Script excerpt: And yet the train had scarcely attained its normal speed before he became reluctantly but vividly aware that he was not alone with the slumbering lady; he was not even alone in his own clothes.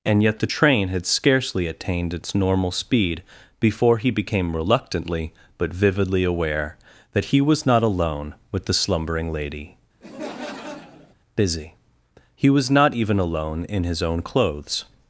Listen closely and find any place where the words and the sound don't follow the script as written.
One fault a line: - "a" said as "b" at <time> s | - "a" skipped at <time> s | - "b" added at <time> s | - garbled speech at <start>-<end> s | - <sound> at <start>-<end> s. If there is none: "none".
- laugh at 10.0-11.1 s
- "busy" added at 11.4 s